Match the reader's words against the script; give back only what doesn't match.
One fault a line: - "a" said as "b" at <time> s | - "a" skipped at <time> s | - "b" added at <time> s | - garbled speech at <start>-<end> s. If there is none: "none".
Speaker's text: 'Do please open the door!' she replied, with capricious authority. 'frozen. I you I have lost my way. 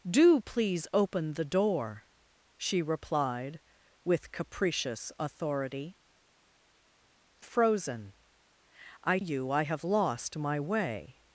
none